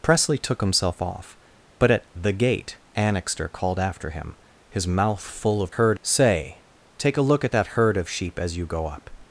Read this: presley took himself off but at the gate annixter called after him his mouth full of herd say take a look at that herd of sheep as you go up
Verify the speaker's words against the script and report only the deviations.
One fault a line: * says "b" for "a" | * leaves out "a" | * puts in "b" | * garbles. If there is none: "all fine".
all fine